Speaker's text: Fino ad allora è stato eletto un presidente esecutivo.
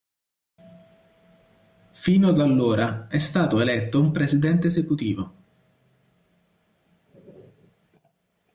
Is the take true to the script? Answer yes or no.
yes